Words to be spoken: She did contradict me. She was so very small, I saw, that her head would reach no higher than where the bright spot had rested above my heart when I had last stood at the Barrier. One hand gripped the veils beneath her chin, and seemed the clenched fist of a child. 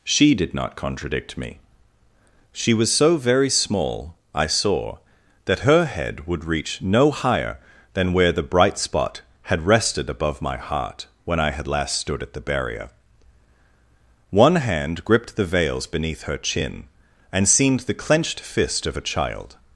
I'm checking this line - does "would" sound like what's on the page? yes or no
yes